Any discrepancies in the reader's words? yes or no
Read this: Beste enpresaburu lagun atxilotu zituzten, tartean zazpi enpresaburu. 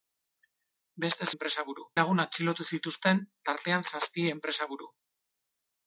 no